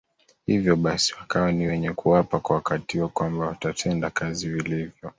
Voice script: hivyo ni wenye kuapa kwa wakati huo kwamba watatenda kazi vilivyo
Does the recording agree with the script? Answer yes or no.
no